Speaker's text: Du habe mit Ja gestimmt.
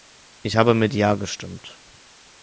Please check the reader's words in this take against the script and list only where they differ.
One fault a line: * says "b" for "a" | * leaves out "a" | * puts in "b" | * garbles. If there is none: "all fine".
* says "Ich" for "Du"